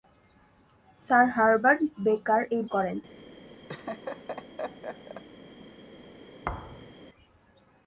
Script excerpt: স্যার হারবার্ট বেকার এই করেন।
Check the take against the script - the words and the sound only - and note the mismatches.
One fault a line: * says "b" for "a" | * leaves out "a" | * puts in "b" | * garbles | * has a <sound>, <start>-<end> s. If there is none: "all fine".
* has a laugh, 3.7-5.2 s
* has a thud, 6.4-7.0 s